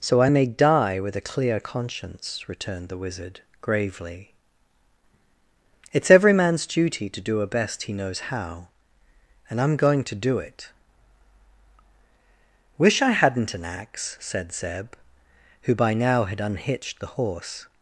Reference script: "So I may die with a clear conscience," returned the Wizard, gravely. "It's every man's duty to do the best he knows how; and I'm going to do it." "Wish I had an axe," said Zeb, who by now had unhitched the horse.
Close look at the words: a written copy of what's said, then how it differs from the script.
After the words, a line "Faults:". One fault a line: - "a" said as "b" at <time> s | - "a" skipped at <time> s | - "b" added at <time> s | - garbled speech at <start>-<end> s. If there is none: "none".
"So I may die with a clear conscience," returned the Wizard, gravely. "It's every man's duty to do a best he knows how; and I'm going to do it." "Wish I hadn't an axe," said Zeb, who by now had unhitched the horse.
Faults:
- "the" said as "a" at 7.4 s
- "had" said as "hadn't" at 13.1 s